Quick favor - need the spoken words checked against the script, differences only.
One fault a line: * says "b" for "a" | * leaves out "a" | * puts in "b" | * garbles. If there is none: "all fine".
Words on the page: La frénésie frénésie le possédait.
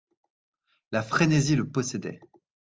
* leaves out "frénésie"